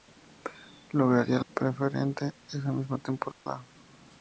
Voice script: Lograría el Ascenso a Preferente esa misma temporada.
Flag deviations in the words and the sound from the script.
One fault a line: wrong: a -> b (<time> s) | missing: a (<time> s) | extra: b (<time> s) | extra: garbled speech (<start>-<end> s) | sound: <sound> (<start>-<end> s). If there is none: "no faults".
missing: Ascenso (1.4 s)
sound: dropout (3.3-3.5 s)